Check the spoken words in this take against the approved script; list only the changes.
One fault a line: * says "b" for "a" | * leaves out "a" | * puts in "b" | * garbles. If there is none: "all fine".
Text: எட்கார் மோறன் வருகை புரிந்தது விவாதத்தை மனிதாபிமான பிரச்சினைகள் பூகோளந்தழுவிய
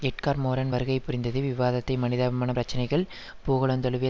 all fine